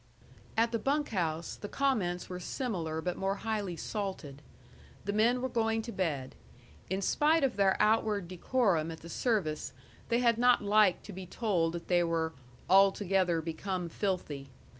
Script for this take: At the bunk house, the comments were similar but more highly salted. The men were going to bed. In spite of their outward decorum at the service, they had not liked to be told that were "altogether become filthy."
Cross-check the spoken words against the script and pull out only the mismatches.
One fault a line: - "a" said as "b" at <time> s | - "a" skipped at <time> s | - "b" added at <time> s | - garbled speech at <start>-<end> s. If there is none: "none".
- "they" added at 11.9 s